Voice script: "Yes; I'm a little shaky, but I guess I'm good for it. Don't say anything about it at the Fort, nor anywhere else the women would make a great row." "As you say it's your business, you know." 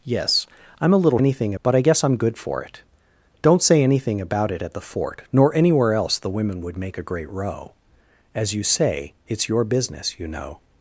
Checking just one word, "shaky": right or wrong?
wrong